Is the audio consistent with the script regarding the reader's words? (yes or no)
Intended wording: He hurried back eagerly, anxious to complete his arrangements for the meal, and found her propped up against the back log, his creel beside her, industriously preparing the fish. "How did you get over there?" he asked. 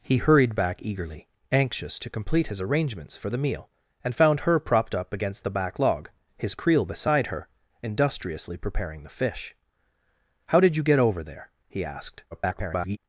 no